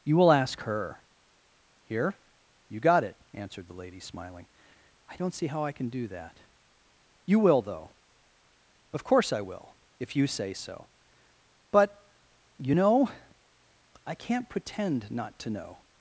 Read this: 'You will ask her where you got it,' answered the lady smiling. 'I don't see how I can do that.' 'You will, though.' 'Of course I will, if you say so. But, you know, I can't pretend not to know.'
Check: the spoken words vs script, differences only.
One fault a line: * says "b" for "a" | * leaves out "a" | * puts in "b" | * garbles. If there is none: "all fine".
* says "here" for "where"